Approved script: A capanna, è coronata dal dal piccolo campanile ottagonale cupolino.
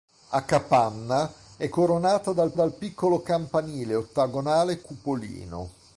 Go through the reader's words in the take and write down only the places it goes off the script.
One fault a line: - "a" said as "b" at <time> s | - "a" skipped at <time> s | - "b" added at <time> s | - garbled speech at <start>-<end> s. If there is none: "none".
none